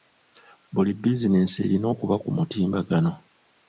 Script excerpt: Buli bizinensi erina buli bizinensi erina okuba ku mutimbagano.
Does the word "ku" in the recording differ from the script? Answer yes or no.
no